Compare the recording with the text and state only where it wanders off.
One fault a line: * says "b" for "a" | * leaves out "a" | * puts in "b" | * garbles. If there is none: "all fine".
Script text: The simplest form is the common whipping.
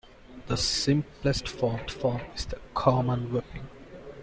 * puts in "form"